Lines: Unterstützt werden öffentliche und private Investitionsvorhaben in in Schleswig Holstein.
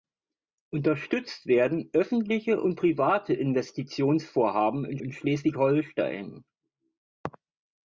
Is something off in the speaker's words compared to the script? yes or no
no